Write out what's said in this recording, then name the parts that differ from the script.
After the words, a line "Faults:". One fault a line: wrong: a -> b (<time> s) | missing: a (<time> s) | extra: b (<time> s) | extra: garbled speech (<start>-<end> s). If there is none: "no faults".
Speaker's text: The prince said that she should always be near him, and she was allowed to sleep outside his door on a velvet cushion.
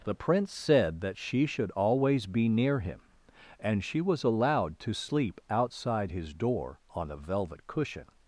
The prince said that she should always be near him, and she was allowed to sleep outside his door on a velvet cushion.
Faults:
no faults